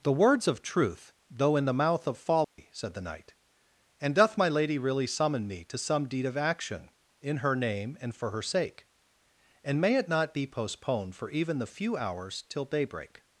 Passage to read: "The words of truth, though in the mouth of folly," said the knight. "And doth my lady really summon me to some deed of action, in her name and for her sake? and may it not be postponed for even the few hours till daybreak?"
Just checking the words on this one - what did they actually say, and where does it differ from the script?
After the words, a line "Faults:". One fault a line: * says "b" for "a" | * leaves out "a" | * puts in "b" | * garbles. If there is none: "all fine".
"The words of truth, though in the mouth of folly," said the knight. "And doth my lady really summon me to some deed of action, in her name and for her sake? and may it not be postponed for even the few hours till daybreak?"
Faults:
all fine